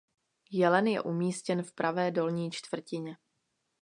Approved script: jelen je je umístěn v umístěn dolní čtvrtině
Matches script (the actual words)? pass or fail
fail